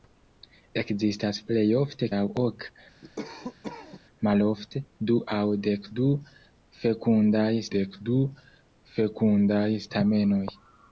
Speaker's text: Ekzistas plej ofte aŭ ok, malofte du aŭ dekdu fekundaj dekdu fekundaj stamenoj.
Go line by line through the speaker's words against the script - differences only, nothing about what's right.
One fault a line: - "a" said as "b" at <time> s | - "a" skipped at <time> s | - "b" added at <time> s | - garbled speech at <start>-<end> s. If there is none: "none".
none